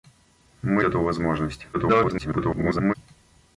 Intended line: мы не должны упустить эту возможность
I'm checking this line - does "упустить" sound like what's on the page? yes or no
no